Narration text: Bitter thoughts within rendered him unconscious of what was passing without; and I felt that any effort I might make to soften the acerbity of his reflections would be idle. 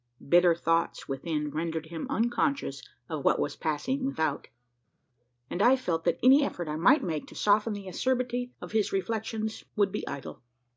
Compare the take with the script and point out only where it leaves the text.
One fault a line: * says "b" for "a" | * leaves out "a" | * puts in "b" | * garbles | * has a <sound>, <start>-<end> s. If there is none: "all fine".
all fine